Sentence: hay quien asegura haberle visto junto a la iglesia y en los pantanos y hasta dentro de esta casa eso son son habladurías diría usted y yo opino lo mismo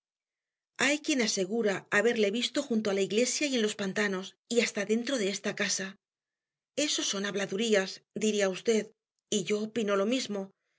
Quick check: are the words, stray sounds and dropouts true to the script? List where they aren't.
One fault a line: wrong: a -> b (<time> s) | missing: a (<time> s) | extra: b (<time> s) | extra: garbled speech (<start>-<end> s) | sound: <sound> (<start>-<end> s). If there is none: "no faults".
missing: son (7.2 s)